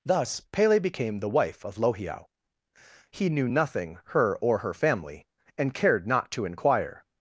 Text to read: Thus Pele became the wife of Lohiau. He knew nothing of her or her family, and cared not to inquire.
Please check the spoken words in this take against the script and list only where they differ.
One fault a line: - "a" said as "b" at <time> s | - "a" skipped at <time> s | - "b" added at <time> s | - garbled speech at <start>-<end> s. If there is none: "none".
- "of" skipped at 4.0 s